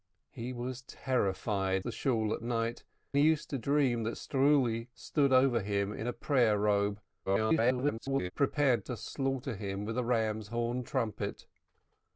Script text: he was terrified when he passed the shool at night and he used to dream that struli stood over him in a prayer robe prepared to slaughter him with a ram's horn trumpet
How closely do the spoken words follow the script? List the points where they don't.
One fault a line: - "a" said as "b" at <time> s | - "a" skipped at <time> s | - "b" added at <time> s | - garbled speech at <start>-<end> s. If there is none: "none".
- "when he passed" skipped at 1.9 s
- "and" skipped at 2.8 s
- garbled speech at 7.3-8.3 s